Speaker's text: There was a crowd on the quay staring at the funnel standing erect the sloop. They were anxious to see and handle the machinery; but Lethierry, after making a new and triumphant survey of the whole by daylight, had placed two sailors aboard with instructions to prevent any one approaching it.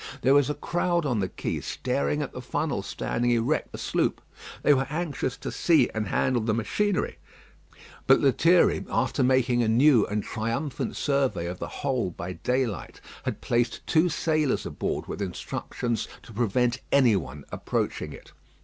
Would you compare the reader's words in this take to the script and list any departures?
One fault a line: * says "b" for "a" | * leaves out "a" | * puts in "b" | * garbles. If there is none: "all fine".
all fine